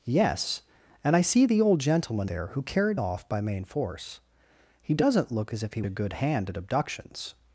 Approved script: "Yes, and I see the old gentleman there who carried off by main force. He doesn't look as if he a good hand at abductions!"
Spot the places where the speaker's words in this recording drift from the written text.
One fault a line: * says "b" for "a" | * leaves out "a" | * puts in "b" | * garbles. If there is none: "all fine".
all fine